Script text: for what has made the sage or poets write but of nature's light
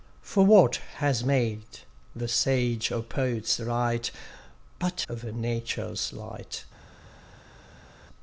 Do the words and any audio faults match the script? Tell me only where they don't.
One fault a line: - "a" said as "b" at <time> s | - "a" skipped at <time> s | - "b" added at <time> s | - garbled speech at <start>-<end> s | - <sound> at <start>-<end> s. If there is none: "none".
none